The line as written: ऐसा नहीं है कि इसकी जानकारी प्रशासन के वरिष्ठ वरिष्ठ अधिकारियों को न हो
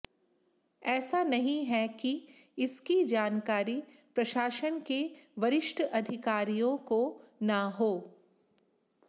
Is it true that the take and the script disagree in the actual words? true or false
true